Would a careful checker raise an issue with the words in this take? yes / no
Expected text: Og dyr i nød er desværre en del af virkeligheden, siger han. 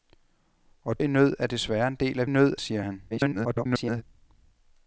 yes